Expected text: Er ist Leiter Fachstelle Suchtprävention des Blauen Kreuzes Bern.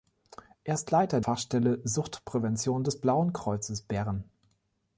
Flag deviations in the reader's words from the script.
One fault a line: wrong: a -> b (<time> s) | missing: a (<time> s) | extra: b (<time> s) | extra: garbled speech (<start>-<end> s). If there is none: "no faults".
no faults